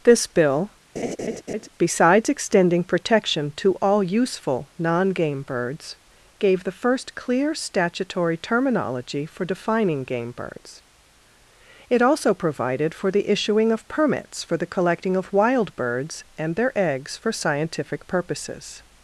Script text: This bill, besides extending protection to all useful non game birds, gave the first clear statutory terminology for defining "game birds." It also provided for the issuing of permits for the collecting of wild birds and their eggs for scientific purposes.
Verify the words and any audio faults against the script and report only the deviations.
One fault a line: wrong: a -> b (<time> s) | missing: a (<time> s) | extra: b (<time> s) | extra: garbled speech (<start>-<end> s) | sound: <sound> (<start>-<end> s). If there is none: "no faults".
sound: laugh (1.0-1.7 s)